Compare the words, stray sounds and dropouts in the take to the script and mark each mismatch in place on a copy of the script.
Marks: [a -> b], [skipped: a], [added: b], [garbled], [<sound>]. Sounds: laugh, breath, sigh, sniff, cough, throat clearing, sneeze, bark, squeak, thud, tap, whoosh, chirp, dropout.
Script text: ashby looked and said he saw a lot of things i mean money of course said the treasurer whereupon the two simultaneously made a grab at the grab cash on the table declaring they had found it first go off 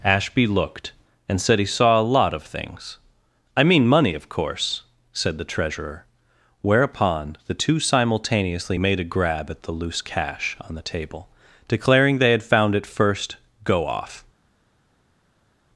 ashby looked and said he saw a lot of things i mean money of course said the treasurer whereupon the two simultaneously made a grab at the [grab -> loose] cash on the table declaring they had found it first go off